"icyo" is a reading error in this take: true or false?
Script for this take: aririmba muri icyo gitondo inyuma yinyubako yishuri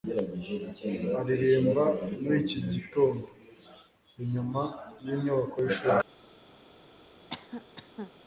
true